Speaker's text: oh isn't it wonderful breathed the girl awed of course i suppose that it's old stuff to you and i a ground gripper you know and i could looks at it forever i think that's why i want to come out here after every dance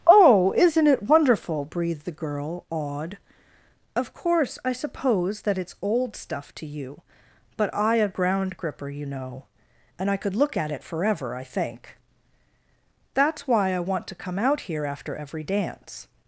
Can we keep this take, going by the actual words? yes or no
no